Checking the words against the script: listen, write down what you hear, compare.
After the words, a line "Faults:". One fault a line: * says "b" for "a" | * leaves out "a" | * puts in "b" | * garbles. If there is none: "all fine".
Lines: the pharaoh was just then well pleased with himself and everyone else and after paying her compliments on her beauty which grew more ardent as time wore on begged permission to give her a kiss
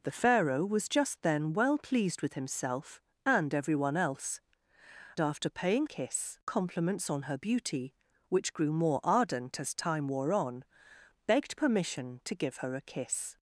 the pharaoh was just then well pleased with himself and everyone else after paying kiss compliments on her beauty which grew more ardent as time wore on begged permission to give her a kiss
Faults:
* leaves out "and"
* says "kiss" for "her"